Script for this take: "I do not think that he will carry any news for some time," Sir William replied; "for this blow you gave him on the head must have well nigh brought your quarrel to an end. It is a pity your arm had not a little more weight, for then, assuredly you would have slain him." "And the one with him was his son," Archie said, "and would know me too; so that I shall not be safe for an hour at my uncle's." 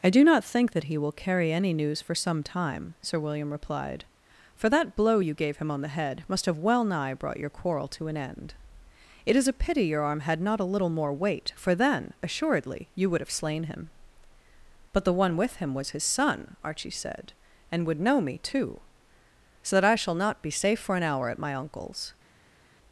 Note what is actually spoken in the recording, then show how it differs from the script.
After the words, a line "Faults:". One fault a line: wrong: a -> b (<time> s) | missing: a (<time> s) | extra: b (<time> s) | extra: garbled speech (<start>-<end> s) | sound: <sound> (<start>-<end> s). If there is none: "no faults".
"I do not think that he will carry any news for some time," Sir William replied; "for that blow you gave him on the head must have well nigh brought your quarrel to an end. It is a pity your arm had not a little more weight, for then, assuredly you would have slain him." "But the one with him was his son," Archie said, "and would know me too; so that I shall not be safe for an hour at my uncle's."
Faults:
wrong: this -> that (4.7 s)
wrong: And -> But (14.9 s)